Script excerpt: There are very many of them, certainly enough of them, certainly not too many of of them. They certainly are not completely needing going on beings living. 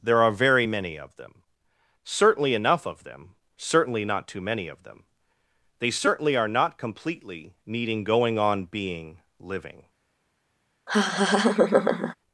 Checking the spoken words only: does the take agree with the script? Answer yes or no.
no